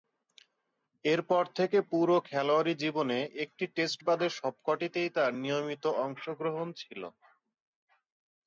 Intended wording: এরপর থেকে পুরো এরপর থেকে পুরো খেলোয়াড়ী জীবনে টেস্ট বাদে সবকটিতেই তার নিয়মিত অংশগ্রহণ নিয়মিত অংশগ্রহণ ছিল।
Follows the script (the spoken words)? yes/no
no